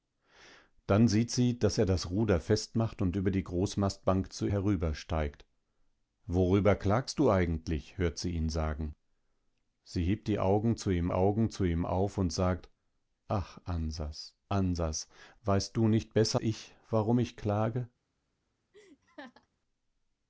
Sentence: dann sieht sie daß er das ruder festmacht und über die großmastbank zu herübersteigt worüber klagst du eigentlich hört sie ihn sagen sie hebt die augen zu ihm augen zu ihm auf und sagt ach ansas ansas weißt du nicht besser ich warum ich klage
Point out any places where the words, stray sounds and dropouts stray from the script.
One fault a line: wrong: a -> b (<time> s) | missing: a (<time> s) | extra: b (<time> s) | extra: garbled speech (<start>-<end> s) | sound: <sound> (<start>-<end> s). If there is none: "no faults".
sound: laugh (18.7-19.5 s)